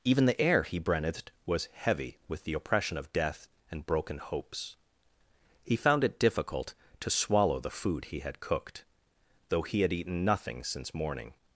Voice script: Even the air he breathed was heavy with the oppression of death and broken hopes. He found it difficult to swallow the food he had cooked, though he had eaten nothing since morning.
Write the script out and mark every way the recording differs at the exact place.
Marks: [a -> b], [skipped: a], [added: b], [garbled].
Even the air he breathed was heavy with the oppression of death and broken hopes. He found it difficult to swallow the food he had cooked, though he had eaten nothing since morning.